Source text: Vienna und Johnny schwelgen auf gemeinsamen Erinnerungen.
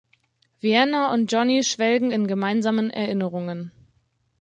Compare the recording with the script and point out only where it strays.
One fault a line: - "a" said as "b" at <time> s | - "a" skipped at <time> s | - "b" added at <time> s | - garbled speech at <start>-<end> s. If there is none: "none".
- "auf" said as "in" at 2.1 s